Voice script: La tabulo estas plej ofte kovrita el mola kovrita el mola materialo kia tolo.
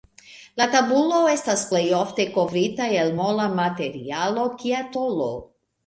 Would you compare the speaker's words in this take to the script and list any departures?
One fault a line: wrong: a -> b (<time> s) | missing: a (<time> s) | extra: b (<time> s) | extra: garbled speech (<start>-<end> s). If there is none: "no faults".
missing: kovrita el mola (3.5 s)